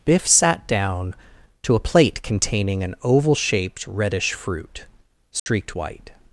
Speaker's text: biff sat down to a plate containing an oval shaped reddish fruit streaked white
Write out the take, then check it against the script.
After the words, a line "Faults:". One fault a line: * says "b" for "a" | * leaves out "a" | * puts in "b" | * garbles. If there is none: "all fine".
biff sat down to a plate containing an oval shaped reddish fruit streaked white
Faults:
all fine